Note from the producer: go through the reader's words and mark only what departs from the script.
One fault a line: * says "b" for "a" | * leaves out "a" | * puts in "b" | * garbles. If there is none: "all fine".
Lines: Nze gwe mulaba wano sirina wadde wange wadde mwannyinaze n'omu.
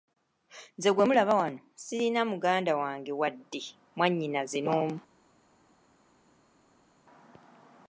* says "muganda" for "wadde"